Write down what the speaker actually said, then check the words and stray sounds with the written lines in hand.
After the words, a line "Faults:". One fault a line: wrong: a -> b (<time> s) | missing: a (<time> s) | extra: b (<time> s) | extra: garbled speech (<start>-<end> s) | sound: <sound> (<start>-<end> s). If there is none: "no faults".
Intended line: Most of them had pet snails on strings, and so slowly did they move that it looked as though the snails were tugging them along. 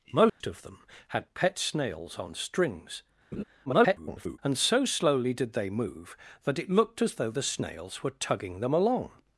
Most of them had pet snails on strings, [garbled] and so slowly did they move that it looked as though the snails were tugging them along.
Faults:
sound: dropout (0.3-0.4 s)
sound: laugh (3.3-3.4 s)
extra: garbled speech (3.7-4.4 s)